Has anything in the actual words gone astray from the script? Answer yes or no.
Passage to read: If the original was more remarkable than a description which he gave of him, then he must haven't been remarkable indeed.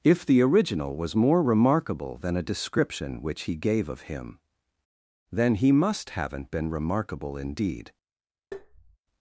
no